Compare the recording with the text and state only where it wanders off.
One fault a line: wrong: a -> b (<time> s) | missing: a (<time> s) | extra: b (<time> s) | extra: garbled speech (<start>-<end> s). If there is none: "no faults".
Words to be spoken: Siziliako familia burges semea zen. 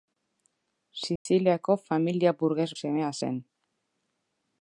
no faults